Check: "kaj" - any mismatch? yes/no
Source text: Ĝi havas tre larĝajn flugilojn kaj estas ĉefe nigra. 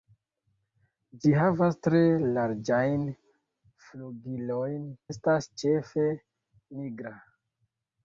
yes